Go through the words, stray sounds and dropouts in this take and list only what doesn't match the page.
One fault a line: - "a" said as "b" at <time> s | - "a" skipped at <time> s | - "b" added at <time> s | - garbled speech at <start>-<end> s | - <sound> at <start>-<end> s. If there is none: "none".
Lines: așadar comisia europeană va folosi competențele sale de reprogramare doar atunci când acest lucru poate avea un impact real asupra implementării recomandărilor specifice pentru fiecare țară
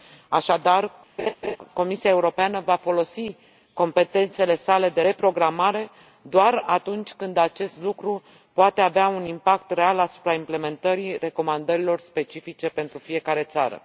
- laugh at 1.2-1.6 s